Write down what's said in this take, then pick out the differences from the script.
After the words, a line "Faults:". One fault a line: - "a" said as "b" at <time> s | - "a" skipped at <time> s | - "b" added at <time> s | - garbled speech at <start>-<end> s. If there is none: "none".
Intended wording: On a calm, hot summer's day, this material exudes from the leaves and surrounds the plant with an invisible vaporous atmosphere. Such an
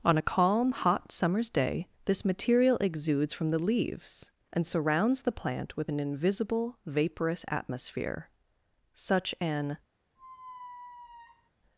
On a calm, hot summer's day, this material exudes from the leaves and surrounds the plant with an invisible vaporous atmosphere. Such an
Faults:
none